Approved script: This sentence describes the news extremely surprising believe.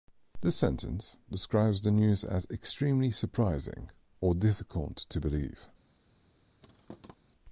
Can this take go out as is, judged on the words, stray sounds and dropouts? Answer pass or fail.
fail